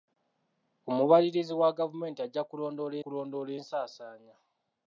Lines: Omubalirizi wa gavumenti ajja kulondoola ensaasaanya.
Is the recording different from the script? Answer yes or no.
yes